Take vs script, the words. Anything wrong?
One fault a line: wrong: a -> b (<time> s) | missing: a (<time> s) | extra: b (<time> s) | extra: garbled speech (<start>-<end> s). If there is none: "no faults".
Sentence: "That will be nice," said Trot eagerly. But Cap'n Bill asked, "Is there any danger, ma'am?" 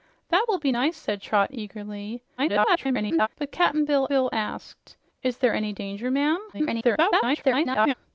extra: garbled speech (2.4-3.3 s)
extra: Bill (4.1 s)
extra: garbled speech (6.5-7.9 s)